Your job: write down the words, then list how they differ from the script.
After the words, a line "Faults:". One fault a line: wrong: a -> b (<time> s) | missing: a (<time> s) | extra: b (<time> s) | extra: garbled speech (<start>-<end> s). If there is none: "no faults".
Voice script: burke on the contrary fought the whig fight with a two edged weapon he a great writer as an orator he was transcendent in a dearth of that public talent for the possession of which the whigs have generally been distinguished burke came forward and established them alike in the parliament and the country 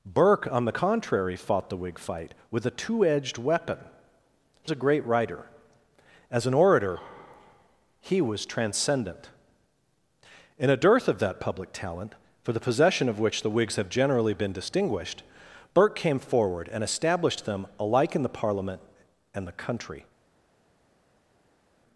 burke on the contrary fought the whig fight with a two edged weapon he a great writer as an orator he was transcendent in a dearth of that public talent for the possession of which the whigs have generally been distinguished burke came forward and established them alike in the parliament and the country
Faults:
no faults